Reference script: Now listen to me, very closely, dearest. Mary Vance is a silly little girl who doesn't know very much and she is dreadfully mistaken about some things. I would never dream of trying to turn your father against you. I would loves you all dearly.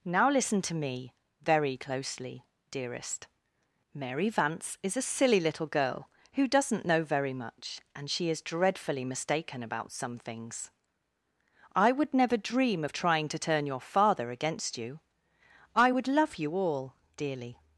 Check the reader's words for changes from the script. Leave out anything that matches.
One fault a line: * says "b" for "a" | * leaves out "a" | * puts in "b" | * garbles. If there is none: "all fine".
* says "love" for "loves"